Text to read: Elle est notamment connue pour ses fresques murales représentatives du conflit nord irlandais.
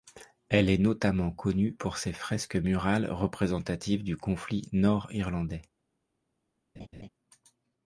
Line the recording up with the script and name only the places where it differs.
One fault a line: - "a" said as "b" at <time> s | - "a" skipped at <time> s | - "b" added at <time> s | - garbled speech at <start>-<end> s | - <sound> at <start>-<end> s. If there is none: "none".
- laugh at 6.8-7.1 s